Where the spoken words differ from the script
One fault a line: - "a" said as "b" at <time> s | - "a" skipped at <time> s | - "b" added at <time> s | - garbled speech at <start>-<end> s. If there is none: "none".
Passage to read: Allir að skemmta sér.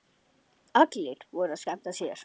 - "voru" added at 1.4 s